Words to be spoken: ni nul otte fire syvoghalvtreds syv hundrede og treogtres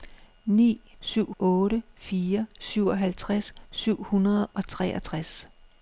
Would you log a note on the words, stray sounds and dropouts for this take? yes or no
yes